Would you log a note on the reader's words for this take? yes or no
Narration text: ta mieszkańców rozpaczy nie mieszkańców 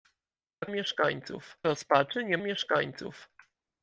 no